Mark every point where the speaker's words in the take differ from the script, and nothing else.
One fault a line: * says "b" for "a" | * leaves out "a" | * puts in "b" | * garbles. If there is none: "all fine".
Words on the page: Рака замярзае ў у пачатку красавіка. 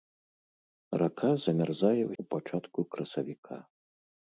all fine